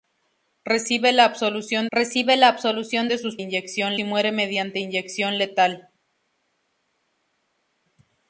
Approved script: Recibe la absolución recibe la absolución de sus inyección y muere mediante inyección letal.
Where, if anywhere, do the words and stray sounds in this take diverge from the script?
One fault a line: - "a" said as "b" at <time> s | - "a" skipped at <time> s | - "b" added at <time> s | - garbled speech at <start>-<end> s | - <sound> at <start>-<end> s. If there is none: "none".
none